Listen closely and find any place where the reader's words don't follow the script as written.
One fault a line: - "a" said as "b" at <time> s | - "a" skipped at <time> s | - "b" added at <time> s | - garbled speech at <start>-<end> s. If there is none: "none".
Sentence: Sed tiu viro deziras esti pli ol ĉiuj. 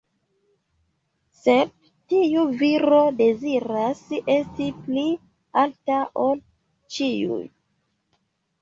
- "alta" added at 5.7 s